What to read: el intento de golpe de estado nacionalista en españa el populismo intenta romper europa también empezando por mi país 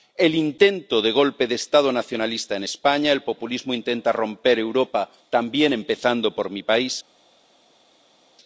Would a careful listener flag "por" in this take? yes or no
no